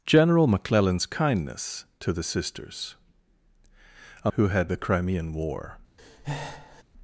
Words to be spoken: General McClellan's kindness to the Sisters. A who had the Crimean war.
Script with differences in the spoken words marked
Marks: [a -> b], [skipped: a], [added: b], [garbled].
General McClellan's kindness to the Sisters. A who had the Crimean war.